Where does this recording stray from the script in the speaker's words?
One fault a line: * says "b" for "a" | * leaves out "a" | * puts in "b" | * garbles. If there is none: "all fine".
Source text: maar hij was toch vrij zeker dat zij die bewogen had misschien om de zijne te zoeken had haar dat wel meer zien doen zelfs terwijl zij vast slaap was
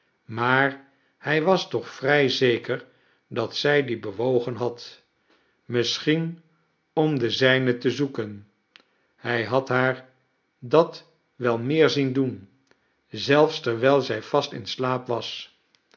* puts in "hij"
* puts in "in"